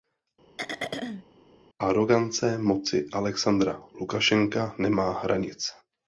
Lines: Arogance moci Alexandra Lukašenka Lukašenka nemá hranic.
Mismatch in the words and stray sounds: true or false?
true